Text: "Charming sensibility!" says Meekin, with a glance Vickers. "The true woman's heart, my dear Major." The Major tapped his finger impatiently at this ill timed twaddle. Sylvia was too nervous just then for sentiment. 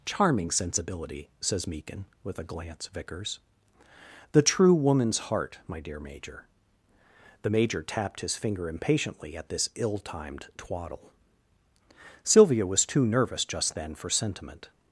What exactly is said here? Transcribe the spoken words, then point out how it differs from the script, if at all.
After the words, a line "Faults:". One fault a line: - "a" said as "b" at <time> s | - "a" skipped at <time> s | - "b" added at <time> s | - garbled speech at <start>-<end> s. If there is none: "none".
"Charming sensibility!" says Meekin, with a glance Vickers. "The true woman's heart, my dear Major." The Major tapped his finger impatiently at this ill timed twaddle. Sylvia was too nervous just then for sentiment.
Faults:
none